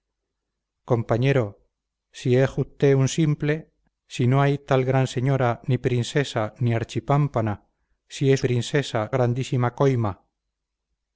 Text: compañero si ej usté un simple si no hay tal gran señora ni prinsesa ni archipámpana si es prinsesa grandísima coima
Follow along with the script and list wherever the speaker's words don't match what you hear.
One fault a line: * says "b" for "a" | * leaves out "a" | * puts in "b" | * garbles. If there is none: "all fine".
all fine